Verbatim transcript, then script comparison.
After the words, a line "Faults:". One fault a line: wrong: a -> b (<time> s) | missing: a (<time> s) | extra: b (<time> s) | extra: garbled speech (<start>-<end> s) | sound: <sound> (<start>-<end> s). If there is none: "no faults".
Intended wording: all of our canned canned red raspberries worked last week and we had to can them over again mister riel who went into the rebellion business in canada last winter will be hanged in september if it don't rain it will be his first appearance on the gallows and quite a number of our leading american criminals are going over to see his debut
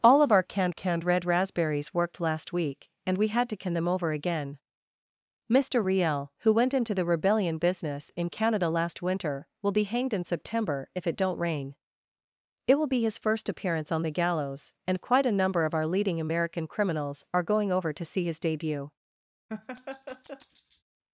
all of our canned canned red raspberries worked last week and we had to can them over again mister riel who went into the rebellion business in canada last winter will be hanged in september if it don't rain it will be his first appearance on the gallows and quite a number of our leading american criminals are going over to see his debut
Faults:
sound: laugh (19.5-20.8 s)